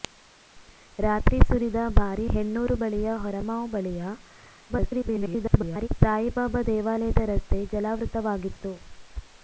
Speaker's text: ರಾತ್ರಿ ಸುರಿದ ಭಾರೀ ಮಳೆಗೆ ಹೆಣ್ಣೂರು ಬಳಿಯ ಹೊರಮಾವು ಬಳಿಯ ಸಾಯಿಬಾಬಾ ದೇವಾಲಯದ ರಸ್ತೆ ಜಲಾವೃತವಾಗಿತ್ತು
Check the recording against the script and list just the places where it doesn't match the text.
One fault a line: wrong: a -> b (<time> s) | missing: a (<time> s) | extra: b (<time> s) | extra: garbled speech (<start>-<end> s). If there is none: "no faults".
missing: ಮಳೆಗೆ (2.2 s)
extra: garbled speech (4.7-5.9 s)